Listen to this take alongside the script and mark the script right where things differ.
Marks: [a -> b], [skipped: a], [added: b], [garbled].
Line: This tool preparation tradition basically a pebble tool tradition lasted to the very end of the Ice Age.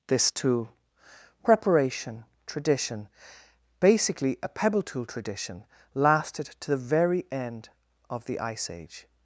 This tool preparation tradition basically a pebble tool tradition lasted to the very end of the Ice Age.